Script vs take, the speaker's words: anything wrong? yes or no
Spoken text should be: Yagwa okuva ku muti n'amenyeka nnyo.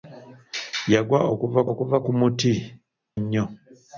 yes